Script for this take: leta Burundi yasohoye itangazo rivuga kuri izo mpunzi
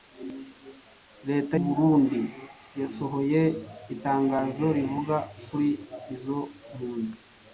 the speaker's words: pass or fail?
pass